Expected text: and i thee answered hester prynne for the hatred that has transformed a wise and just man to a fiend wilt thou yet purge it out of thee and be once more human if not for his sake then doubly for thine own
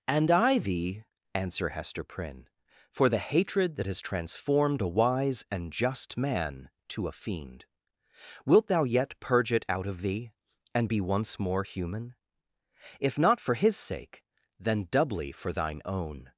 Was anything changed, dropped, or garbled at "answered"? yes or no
yes